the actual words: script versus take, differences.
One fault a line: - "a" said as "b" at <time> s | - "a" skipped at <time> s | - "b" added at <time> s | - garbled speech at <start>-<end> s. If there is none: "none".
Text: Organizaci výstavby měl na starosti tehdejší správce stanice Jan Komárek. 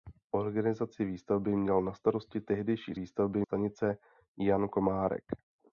- "správce" said as "výstavby" at 2.9 s